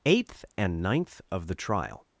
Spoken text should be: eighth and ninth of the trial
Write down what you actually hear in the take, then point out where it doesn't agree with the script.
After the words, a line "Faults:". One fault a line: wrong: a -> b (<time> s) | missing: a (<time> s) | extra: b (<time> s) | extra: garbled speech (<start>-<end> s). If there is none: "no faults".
eighth and ninth of the trial
Faults:
no faults